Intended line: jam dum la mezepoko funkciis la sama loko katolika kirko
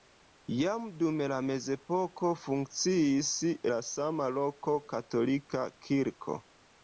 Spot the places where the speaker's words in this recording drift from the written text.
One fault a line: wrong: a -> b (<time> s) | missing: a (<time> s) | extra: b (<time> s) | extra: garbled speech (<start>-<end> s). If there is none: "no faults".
no faults